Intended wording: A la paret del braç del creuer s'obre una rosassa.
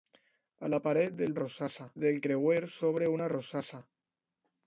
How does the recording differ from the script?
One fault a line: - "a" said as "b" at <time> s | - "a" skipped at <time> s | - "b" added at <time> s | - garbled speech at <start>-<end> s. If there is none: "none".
- "braç" said as "rosassa" at 1.4 s